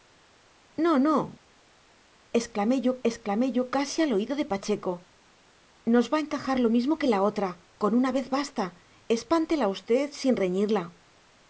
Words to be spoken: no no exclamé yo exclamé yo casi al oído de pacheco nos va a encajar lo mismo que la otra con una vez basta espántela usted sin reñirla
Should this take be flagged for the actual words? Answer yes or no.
no